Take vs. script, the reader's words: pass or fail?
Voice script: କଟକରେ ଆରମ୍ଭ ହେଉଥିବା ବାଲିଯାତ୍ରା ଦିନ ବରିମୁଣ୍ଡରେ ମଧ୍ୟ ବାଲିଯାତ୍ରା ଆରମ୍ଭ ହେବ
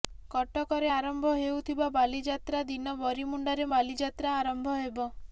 fail